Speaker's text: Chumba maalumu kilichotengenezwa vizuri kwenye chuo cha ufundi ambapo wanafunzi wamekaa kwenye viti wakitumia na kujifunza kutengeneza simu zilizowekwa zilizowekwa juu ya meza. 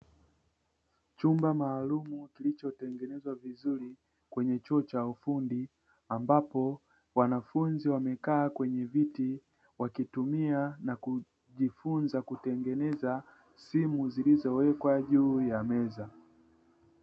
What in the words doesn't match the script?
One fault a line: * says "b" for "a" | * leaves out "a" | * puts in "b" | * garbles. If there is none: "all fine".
* leaves out "zilizowekwa"